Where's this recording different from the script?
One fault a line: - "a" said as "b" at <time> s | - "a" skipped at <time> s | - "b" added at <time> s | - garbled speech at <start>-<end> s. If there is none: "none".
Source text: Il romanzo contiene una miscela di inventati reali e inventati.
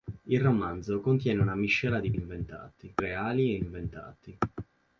none